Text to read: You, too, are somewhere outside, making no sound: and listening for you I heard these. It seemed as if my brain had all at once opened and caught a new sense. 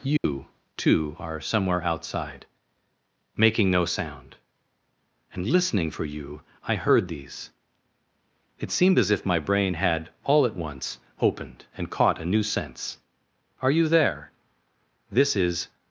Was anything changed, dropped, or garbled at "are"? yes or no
no